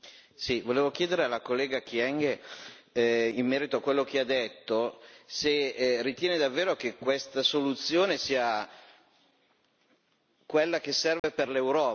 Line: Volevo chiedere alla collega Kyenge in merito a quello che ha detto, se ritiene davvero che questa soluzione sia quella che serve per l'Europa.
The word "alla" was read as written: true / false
true